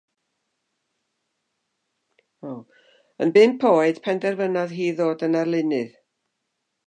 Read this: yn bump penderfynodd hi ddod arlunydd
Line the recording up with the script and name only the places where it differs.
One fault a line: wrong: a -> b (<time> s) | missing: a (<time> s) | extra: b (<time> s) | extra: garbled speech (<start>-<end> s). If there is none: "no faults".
extra: oed (3.7 s)
extra: yn (5.3 s)